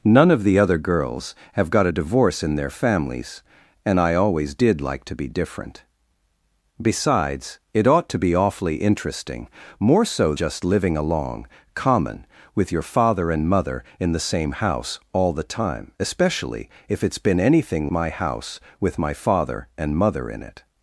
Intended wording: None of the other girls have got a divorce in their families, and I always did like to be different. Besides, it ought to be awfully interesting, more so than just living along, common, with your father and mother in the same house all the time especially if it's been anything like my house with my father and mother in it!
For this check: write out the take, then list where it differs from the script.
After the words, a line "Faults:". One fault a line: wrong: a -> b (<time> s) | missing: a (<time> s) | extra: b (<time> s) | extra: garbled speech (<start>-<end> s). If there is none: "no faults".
None of the other girls have got a divorce in their families, and I always did like to be different. Besides, it ought to be awfully interesting, more so just living along, common, with your father and mother in the same house all the time especially if it's been anything my house with my father and mother in it!
Faults:
missing: than (10.3 s)
missing: like (17.9 s)